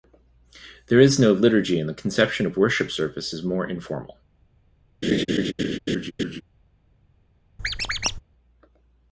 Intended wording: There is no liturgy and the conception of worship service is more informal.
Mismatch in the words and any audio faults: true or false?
true